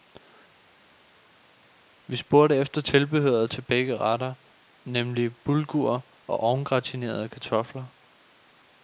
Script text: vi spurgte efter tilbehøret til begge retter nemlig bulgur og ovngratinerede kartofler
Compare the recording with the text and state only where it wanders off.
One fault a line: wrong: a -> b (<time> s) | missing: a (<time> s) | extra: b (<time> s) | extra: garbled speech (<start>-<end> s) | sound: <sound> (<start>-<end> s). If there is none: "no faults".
no faults